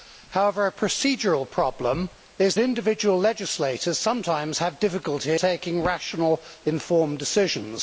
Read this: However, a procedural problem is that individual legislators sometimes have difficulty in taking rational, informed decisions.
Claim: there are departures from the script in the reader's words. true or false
true